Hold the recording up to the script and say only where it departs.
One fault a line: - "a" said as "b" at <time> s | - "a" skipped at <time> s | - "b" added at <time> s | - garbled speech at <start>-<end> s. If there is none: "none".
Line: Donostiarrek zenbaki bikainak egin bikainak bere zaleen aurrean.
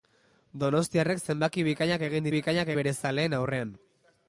none